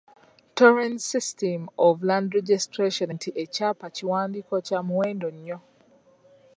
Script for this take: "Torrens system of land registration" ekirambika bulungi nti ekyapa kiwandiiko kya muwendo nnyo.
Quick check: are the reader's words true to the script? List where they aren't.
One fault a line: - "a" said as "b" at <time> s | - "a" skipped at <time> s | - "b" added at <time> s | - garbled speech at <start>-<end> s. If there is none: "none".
- "ekirambika bulungi" skipped at 3.1 s